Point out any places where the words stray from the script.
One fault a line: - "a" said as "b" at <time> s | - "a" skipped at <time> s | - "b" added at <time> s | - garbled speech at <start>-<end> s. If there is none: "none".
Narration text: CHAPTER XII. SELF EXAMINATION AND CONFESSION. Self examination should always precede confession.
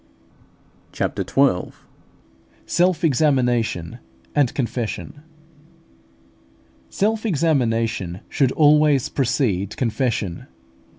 none